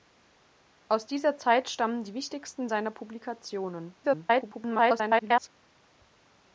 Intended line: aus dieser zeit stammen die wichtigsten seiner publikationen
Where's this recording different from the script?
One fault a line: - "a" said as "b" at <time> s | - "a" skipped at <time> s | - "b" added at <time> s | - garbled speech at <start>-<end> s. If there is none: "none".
- garbled speech at 4.0-5.5 s